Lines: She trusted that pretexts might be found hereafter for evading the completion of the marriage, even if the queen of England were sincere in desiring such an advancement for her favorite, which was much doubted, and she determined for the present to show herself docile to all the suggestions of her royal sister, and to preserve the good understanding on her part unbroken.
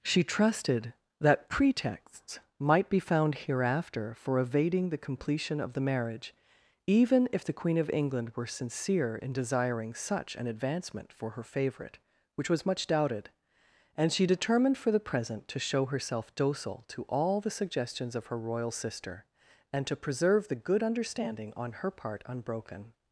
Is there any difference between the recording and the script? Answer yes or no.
no